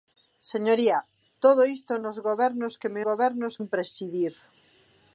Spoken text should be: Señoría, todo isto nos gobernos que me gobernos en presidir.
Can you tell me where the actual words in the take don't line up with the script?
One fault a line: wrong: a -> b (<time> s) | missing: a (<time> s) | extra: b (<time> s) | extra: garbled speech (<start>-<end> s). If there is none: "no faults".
no faults